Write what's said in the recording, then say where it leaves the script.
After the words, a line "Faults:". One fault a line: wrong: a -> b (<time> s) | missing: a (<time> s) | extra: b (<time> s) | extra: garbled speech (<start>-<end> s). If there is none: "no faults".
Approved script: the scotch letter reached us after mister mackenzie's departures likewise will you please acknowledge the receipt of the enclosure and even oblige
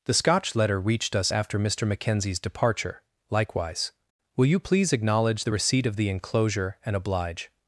the scotch letter reached us after mister mackenzie's departure likewise will you please acknowledge the receipt of the enclosure and oblige
Faults:
wrong: departures -> departure (2.4 s)
missing: even (7.0 s)